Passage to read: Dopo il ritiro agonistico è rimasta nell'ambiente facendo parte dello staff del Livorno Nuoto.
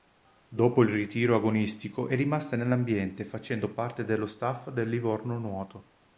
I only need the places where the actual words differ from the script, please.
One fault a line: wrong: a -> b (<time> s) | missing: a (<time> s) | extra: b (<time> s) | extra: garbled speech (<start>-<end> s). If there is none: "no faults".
no faults